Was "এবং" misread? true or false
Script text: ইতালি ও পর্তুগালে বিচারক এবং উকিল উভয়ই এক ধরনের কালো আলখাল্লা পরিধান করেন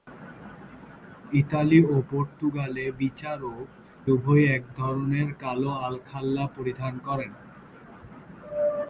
true